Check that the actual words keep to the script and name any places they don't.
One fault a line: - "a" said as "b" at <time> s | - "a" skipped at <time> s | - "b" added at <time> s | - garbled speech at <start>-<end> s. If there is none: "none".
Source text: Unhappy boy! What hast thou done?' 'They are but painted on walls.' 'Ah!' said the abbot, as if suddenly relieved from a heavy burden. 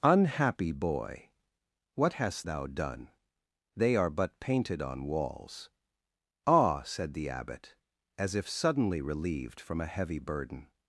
none